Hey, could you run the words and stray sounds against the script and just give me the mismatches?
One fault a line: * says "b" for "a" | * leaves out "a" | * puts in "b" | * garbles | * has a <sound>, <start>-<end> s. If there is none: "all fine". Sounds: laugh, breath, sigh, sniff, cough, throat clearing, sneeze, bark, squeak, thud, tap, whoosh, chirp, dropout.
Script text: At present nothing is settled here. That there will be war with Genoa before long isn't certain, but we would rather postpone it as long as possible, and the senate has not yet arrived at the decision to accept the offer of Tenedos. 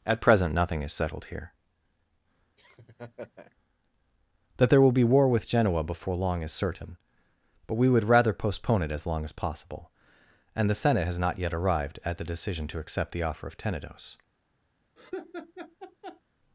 * has a laugh, 2.6-3.6 s
* says "is" for "isn't"
* has a laugh, 15.0-16.2 s